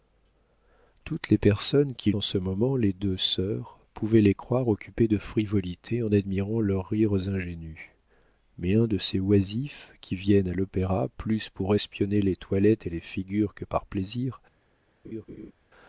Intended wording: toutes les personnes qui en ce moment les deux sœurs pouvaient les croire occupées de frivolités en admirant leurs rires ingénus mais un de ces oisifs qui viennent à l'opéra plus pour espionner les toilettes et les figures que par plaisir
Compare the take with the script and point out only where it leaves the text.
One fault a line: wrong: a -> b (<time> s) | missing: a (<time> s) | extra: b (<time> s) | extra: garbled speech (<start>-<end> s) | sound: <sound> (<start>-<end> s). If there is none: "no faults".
sound: laugh (15.0-15.5 s)